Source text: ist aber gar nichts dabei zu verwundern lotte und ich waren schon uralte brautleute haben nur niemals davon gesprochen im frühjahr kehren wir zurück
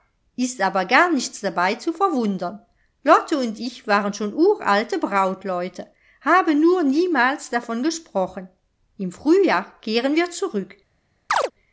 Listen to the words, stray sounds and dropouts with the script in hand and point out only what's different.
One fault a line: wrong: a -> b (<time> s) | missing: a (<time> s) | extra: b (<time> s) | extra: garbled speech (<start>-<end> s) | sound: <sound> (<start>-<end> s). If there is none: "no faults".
sound: chirp (11.3-11.5 s)